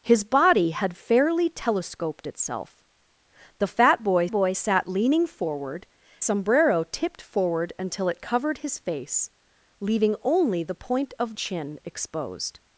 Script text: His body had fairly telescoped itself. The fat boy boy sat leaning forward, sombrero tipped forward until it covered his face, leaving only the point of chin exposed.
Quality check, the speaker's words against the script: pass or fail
pass